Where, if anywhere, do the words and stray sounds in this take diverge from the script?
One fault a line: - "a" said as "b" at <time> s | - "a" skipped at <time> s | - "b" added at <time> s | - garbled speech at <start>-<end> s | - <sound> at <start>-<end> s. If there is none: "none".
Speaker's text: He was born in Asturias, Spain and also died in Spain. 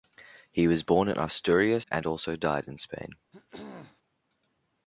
- "Spain" skipped at 1.9 s
- throat clearing at 3.3-4.0 s